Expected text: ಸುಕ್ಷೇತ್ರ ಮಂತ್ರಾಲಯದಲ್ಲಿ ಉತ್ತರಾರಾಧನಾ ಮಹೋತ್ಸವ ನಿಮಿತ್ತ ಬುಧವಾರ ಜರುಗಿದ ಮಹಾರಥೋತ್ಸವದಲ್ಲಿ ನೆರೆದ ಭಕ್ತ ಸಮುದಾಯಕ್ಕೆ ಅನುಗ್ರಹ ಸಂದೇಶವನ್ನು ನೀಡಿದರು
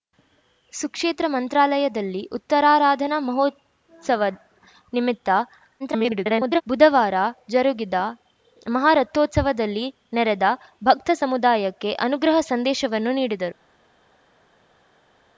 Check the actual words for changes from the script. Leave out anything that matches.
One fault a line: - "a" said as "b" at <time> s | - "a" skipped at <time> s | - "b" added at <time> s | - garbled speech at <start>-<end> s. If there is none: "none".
- garbled speech at 5.8-6.6 s